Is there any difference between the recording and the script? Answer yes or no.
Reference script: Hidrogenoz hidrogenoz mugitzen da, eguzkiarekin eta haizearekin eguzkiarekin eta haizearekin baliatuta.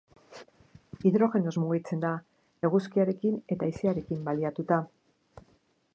yes